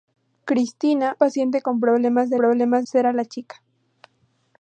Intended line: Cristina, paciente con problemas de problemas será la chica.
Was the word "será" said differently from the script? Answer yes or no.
no